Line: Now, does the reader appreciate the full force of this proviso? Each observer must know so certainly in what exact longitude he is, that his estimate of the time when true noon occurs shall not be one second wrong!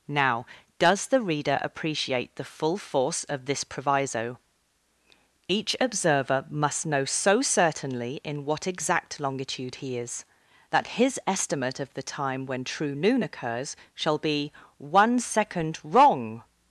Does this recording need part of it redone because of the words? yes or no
yes